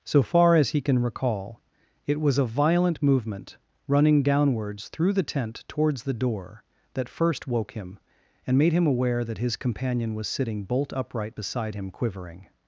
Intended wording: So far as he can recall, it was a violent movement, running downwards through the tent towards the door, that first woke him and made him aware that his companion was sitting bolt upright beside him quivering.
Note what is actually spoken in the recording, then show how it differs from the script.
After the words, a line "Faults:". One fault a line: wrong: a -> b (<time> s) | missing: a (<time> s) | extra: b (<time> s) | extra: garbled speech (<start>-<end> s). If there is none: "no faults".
So far as he can recall, it was a violent movement, running downwards through the tent towards the door, that first woke him and made him aware that his companion was sitting bolt upright beside him quivering.
Faults:
no faults